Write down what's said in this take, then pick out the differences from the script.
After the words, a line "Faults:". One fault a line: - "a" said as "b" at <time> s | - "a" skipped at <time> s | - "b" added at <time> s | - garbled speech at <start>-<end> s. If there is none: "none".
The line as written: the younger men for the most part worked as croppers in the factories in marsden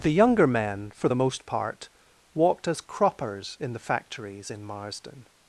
the younger men for the most part walked as croppers in the factories in marsden
Faults:
- "worked" said as "walked" at 2.3 s